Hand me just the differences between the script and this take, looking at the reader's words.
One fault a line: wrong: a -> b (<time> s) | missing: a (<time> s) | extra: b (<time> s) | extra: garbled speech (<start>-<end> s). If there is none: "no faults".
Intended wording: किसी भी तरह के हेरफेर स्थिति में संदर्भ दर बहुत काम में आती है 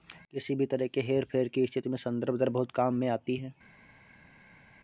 extra: की (1.5 s)